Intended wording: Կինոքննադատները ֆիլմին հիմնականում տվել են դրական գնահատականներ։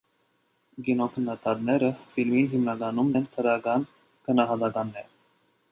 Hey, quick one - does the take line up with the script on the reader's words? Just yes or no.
no